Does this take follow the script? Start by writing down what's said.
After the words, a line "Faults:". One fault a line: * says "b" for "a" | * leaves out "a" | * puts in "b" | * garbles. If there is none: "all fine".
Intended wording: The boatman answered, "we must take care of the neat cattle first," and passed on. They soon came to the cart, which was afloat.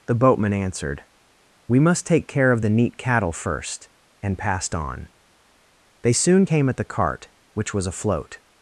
The boatman answered, "we must take care of the neat cattle first," and passed on. They soon came at the cart, which was afloat.
Faults:
* says "at" for "to"